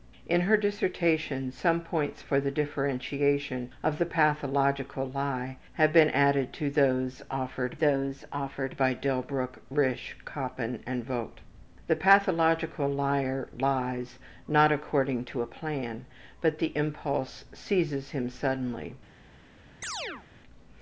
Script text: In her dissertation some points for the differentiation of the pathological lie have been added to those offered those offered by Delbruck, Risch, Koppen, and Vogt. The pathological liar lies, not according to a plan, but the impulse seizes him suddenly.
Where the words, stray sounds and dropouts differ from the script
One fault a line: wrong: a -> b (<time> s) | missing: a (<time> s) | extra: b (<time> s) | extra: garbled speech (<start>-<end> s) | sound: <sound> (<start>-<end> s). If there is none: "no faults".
sound: chirp (19.8-20.3 s)